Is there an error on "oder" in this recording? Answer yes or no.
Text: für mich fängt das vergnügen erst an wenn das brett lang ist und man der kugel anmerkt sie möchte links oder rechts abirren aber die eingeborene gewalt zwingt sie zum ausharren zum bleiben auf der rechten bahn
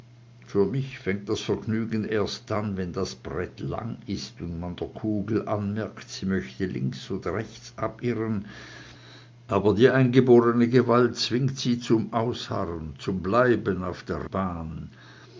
no